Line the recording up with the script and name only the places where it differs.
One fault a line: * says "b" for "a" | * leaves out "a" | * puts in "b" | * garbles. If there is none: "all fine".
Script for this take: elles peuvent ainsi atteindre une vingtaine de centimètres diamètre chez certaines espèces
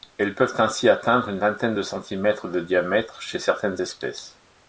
* puts in "de"